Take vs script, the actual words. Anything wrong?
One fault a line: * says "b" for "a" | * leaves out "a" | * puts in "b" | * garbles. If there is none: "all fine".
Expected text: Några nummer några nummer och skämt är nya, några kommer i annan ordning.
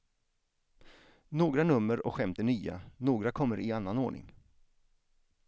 * leaves out "några nummer"